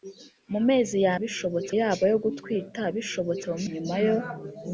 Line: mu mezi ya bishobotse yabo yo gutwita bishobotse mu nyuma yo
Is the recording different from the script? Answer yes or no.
no